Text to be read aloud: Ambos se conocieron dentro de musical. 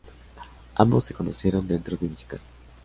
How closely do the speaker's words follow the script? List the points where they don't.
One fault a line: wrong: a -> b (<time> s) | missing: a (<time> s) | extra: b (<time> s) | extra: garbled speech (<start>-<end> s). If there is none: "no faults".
no faults